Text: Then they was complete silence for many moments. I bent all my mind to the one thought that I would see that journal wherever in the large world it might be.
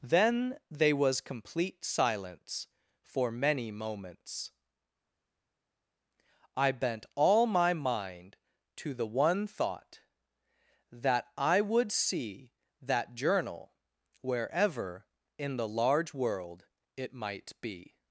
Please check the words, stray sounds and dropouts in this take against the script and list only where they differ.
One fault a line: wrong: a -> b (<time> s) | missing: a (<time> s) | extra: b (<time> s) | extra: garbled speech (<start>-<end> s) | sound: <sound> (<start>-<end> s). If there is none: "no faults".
no faults